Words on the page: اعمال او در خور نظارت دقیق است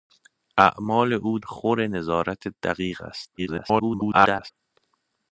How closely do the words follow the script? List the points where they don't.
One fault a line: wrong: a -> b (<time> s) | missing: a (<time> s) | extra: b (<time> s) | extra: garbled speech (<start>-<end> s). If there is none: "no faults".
missing: در (1.4 s)
extra: garbled speech (3.4-4.5 s)